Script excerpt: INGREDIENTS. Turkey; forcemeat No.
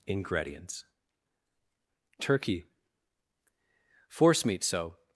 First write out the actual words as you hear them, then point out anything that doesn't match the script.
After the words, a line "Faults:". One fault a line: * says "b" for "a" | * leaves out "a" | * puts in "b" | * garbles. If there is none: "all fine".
INGREDIENTS. Turkey; forcemeat So.
Faults:
* says "So" for "No"